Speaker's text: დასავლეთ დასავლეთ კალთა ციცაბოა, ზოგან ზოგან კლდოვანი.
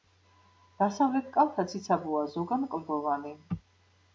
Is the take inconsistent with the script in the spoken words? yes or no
yes